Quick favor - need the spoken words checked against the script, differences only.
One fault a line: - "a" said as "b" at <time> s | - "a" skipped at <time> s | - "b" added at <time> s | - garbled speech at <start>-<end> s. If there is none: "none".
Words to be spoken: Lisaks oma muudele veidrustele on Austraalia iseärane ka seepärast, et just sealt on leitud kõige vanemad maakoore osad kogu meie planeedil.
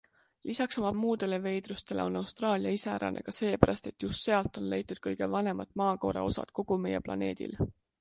none